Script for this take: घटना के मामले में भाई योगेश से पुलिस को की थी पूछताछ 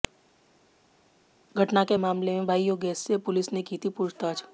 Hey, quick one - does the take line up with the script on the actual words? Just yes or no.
no